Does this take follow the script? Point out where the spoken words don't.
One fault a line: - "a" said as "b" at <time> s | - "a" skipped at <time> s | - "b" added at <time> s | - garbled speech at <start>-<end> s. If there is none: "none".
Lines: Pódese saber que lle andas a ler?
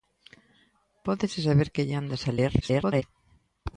- garbled speech at 2.6-3.0 s